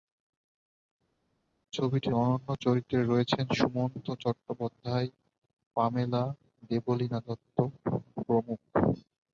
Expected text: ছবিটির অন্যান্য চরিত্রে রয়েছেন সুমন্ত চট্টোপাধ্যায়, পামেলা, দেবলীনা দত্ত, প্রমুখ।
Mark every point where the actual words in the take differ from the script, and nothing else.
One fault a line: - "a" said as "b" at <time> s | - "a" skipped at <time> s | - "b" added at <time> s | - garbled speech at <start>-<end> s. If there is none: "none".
none